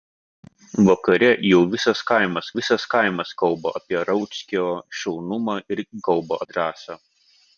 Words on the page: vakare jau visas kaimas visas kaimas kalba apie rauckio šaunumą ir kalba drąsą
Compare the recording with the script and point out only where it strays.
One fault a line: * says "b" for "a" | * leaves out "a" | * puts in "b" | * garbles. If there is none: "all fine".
all fine